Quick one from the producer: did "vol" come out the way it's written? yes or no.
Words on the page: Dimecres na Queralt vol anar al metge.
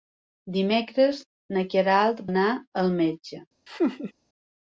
no